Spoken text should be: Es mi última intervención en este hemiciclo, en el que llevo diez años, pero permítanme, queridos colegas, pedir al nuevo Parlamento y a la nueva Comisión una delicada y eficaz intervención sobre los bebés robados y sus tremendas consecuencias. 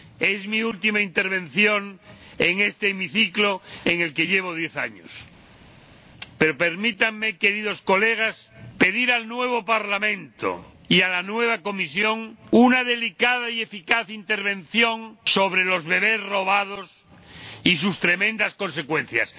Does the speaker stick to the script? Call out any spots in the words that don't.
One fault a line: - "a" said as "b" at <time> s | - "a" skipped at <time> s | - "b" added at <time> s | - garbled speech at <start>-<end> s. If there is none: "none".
none